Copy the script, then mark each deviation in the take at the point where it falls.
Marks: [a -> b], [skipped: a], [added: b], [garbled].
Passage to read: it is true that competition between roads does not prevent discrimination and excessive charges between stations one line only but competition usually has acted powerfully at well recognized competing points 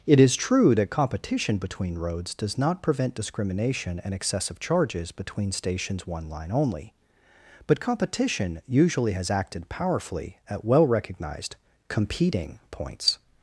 it is true that competition between roads does not prevent discrimination and excessive charges between stations one line only but competition usually has acted powerfully at well recognized competing points